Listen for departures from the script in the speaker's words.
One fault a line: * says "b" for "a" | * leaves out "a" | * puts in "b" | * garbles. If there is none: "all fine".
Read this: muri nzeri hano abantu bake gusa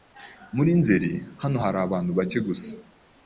* puts in "hari"